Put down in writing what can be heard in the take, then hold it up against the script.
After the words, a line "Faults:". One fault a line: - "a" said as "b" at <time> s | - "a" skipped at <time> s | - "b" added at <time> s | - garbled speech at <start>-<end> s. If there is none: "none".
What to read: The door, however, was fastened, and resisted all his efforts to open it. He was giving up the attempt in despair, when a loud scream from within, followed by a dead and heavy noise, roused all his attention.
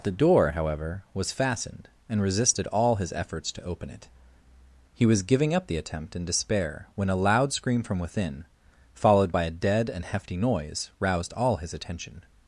The door, however, was fastened, and resisted all his efforts to open it. He was giving up the attempt in despair, when a loud scream from within, followed by a dead and hefty noise, roused all his attention.
Faults:
- "heavy" said as "hefty" at 10.0 s